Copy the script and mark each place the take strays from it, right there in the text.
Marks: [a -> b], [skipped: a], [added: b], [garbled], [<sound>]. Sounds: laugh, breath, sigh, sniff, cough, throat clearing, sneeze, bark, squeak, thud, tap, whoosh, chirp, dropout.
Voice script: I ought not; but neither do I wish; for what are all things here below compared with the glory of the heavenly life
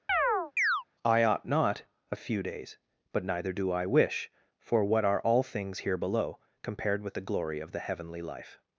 [chirp] I ought not; [added: a few days] but neither do I wish; for what are all things here below compared with the glory of the heavenly life